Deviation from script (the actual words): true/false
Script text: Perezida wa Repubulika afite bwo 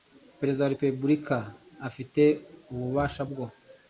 true